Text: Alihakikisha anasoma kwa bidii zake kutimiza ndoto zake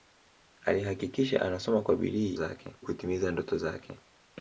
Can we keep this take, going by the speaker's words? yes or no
yes